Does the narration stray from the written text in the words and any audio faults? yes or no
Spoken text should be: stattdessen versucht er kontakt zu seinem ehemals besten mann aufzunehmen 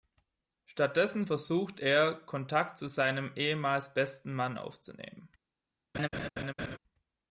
yes